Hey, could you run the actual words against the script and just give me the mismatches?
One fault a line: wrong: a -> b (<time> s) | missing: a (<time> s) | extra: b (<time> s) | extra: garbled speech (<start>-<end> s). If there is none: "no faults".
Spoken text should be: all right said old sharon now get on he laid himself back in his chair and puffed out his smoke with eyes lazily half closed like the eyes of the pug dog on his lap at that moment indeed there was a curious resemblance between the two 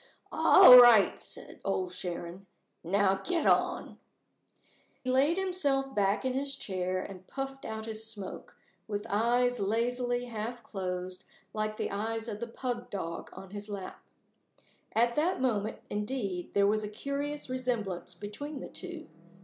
missing: he (4.0 s)